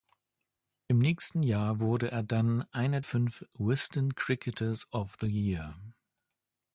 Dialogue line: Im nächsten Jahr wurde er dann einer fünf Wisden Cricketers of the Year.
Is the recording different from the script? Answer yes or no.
no